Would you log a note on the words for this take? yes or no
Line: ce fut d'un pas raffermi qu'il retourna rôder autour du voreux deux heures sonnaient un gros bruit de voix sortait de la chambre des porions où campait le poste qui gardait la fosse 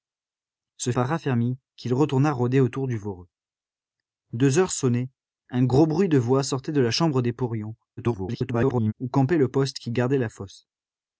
yes